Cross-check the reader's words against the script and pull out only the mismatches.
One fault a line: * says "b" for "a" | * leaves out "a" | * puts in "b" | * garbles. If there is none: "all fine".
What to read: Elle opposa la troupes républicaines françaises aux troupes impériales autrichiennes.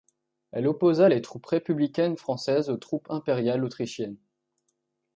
* says "les" for "la"